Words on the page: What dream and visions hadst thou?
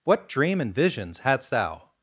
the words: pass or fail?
pass